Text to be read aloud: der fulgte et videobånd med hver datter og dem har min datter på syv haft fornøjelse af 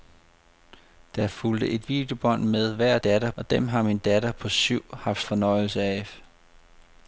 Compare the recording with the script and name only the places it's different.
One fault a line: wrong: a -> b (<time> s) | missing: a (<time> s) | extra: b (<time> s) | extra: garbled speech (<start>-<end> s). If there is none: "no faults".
no faults